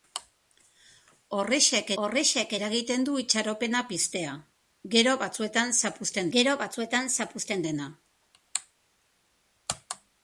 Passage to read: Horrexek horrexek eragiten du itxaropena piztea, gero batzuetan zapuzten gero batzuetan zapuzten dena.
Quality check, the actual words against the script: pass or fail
pass